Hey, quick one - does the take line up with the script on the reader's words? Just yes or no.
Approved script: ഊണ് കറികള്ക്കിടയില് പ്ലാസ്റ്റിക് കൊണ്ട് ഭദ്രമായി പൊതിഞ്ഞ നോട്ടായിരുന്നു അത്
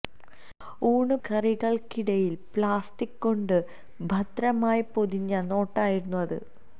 yes